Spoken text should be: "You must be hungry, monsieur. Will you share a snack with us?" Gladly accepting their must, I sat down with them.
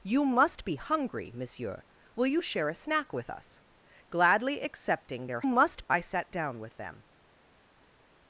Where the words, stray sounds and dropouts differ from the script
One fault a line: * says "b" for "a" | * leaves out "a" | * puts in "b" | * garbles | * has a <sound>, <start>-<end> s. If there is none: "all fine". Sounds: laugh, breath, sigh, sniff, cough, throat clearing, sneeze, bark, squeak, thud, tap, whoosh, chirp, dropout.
all fine